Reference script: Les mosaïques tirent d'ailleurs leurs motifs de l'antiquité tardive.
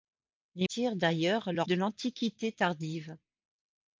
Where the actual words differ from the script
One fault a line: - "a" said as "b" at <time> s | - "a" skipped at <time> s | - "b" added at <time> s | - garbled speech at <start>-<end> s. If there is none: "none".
- "mosaïques" skipped at 0.7 s
- "motifs" skipped at 1.7 s